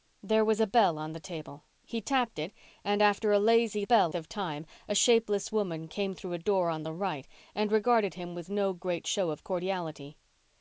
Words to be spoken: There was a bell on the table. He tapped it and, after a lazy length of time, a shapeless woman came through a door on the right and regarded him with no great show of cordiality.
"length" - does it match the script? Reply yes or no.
no